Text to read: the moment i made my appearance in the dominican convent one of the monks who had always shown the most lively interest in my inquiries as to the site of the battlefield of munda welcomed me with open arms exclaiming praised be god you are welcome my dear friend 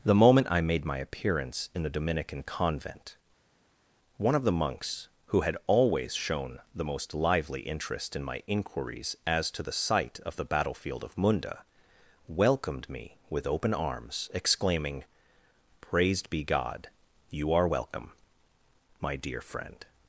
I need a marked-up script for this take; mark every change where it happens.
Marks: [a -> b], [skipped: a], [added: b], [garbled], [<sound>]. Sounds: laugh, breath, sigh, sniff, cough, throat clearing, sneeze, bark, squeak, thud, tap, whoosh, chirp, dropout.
the moment i made my appearance in the dominican convent one of the monks who had always shown the most lively interest in my inquiries as to the site of the battlefield of munda welcomed me with open arms exclaiming praised be god you are welcome my dear friend